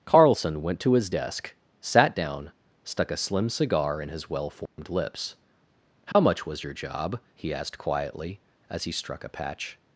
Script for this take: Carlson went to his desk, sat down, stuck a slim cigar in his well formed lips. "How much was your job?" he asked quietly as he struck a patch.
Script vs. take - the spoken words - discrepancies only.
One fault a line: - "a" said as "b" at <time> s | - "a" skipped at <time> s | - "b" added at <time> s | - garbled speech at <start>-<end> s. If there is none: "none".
none